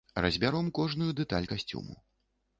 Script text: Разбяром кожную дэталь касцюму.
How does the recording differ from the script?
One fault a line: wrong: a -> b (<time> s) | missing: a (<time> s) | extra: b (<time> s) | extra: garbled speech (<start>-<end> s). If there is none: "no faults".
no faults